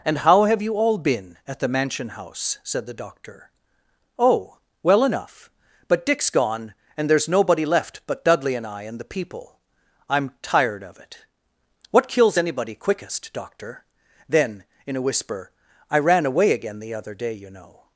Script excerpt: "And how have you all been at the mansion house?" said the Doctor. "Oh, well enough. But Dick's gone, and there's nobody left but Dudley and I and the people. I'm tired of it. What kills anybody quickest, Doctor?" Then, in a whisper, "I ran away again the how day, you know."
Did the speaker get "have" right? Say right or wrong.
right